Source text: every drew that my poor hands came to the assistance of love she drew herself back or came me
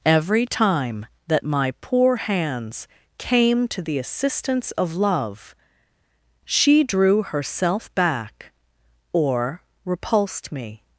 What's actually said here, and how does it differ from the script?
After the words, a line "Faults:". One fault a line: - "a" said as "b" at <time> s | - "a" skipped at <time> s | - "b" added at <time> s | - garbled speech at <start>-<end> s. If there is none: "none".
every time that my poor hands came to the assistance of love she drew herself back or repulsed me
Faults:
- "drew" said as "time" at 0.5 s
- "came" said as "repulsed" at 9.9 s